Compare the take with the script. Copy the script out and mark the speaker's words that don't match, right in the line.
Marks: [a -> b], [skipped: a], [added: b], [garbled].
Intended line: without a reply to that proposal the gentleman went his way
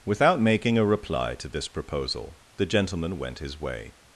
without [added: making] a reply to [that -> this] proposal the gentleman went his way